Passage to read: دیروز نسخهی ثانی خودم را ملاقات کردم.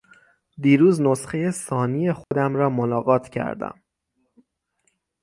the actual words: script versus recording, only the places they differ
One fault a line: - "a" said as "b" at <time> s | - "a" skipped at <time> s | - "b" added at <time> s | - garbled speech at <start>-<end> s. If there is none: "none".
none